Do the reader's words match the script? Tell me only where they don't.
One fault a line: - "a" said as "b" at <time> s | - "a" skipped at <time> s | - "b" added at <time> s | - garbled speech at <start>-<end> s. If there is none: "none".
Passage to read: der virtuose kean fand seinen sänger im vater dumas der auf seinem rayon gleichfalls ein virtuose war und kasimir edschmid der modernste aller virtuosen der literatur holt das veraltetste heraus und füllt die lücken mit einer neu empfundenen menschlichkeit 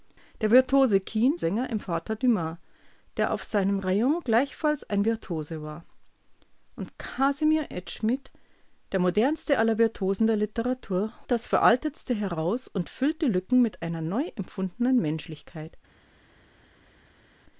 - "fand seinen" skipped at 1.4 s
- "holt" skipped at 11.1 s